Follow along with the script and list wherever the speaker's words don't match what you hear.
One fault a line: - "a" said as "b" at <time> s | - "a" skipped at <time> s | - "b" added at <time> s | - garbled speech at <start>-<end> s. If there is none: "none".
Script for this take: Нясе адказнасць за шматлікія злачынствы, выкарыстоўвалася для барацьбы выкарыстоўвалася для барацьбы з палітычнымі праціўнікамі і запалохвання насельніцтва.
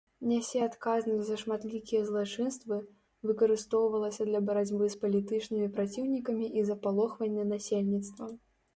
- "выкарыстоўвалася для барацьбы" skipped at 4.8 s